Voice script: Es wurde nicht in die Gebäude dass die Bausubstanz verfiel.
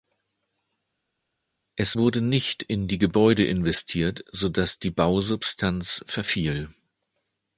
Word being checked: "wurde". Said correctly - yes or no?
yes